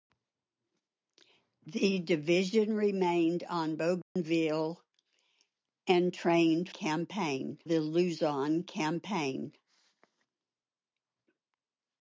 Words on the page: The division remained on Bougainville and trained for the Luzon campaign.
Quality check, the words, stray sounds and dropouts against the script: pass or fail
fail